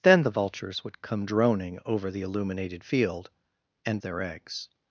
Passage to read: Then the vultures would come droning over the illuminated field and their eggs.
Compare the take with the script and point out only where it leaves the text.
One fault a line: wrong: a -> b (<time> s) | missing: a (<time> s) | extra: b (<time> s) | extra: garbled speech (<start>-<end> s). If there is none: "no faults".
no faults